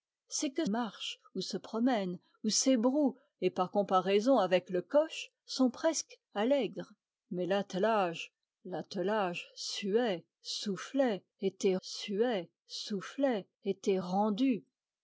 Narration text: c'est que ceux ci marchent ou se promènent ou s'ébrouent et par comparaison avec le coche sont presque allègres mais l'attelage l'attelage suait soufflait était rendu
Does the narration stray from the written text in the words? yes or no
yes